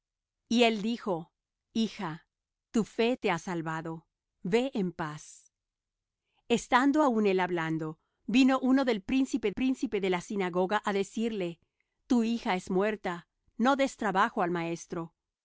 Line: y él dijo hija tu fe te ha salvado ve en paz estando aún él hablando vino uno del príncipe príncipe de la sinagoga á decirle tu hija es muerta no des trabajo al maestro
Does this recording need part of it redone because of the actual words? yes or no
no